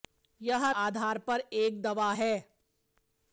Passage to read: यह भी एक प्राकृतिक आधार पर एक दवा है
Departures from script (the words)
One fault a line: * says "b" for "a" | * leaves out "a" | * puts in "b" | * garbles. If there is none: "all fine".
* leaves out "भी एक प्राकृतिक"